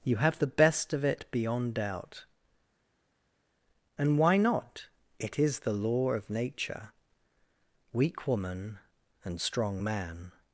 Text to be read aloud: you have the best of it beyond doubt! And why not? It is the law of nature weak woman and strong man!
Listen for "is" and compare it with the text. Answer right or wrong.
right